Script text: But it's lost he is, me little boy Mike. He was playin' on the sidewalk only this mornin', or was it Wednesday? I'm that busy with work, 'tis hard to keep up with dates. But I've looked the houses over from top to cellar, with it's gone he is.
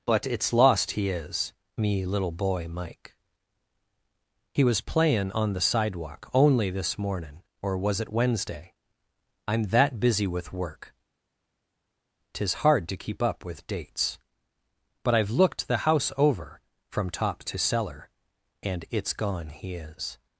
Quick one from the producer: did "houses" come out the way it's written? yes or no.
no